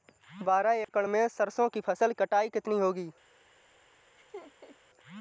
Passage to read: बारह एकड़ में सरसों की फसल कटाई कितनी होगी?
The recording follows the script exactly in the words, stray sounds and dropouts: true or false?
false